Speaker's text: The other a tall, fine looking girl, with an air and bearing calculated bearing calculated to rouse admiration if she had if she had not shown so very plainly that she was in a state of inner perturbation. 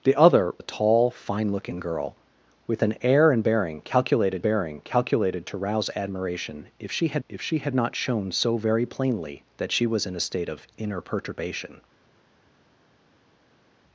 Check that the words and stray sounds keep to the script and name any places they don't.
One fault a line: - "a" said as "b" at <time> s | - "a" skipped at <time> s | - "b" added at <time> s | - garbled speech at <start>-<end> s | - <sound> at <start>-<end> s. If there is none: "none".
none